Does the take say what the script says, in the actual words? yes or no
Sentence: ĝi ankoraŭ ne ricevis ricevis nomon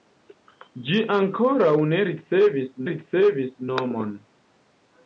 yes